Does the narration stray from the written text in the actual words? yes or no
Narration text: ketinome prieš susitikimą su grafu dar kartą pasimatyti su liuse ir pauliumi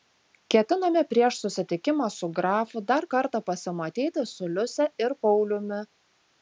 no